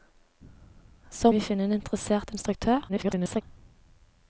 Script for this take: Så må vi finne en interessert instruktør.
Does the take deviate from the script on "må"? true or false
true